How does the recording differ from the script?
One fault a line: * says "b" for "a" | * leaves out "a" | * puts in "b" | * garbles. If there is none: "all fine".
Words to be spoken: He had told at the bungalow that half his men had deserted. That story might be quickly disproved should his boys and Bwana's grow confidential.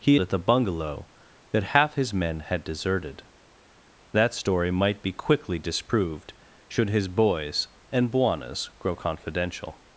* leaves out "had told"